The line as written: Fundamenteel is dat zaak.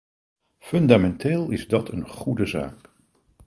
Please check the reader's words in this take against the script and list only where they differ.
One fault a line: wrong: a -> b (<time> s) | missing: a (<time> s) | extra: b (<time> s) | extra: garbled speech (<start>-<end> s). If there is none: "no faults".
extra: een goede (1.9 s)